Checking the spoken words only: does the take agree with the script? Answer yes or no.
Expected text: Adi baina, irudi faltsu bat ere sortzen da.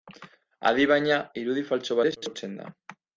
no